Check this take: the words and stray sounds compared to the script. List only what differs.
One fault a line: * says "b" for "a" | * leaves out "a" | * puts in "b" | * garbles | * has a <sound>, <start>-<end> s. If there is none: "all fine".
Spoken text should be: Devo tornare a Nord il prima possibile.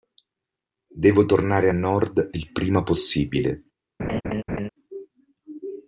* has a laugh, 4.0-4.7 s